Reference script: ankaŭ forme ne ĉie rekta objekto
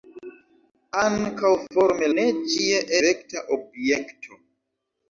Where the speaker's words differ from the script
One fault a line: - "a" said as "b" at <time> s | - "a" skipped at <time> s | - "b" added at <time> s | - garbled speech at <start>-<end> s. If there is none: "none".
none